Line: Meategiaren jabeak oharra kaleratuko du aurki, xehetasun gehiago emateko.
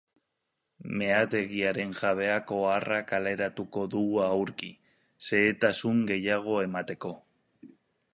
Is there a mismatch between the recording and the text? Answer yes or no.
no